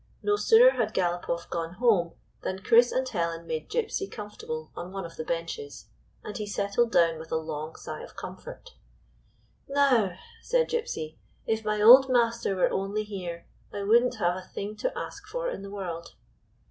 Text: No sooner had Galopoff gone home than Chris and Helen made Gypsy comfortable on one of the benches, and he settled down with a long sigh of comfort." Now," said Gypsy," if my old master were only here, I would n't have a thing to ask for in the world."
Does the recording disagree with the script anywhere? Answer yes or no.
no